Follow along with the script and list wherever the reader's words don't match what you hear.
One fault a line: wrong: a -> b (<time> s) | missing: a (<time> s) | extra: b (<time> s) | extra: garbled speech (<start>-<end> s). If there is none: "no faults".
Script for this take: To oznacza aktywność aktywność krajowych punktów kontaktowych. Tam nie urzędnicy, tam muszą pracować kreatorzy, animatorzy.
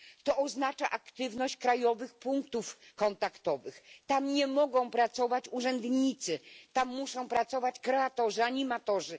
missing: aktywność (1.6 s)
extra: mogą pracować (4.5 s)